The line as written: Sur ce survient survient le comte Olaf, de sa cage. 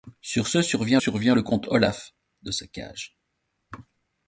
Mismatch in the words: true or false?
false